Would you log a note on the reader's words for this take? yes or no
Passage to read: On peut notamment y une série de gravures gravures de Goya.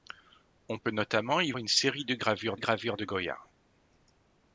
no